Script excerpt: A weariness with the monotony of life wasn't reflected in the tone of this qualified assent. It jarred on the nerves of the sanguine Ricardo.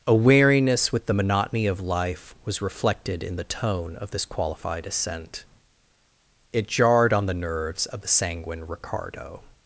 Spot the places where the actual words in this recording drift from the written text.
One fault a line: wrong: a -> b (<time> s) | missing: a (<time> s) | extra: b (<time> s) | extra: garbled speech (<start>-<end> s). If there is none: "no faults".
wrong: wasn't -> was (2.5 s)